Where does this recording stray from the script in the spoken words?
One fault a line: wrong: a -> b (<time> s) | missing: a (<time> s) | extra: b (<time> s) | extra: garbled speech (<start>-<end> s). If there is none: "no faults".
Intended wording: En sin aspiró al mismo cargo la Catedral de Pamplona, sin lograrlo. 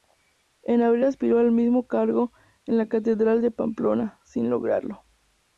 wrong: sin -> abril (0.8 s)
extra: en (2.7 s)